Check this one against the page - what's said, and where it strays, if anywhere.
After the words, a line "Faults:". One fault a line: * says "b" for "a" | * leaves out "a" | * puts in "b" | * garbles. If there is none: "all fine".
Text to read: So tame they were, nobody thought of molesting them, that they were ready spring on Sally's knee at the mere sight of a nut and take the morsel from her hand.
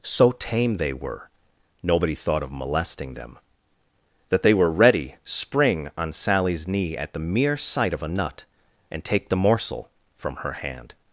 So tame they were, nobody thought of molesting them, that they were ready spring on Sally's knee at the mere sight of a nut and take the morsel from her hand.
Faults:
all fine